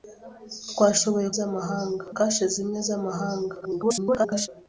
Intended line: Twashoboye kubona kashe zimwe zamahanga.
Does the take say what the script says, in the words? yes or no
no